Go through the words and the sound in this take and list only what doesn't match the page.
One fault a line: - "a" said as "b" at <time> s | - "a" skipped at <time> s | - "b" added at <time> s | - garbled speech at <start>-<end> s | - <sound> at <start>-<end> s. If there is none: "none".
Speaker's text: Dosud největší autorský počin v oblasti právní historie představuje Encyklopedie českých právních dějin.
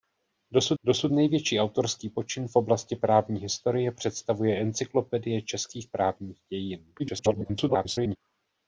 - "dosud" added at 0.8 s
- garbled speech at 7.0-8.2 s